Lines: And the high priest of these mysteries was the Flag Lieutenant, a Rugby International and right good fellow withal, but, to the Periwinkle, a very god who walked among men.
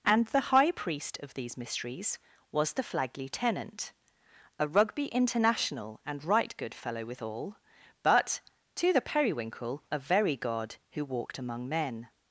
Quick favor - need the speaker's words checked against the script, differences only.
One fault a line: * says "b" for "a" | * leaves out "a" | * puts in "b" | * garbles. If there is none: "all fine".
all fine